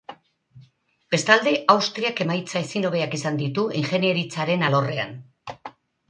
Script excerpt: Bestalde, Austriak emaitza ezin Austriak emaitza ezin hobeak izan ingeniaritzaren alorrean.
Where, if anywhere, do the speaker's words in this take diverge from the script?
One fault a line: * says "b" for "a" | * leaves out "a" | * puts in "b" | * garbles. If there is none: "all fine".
* leaves out "Austriak emaitza ezin"
* puts in "ditu"